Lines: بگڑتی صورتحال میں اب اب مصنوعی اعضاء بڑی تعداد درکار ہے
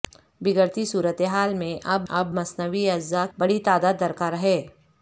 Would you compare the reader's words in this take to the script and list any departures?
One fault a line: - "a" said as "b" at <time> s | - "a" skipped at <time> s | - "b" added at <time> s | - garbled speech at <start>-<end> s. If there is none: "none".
none